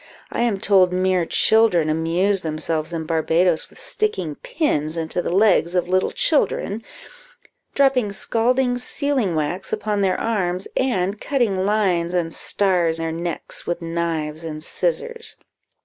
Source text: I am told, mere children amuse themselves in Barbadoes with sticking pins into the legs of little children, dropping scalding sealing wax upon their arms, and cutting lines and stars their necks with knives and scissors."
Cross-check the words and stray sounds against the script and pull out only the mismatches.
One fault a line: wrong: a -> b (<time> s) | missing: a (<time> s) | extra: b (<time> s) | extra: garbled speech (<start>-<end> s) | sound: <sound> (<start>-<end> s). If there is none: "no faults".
no faults